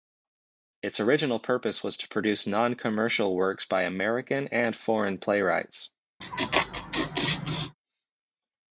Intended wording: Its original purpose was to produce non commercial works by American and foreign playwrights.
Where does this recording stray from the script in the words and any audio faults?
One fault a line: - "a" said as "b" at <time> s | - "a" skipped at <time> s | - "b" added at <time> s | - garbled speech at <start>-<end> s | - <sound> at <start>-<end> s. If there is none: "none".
- laugh at 6.2-7.8 s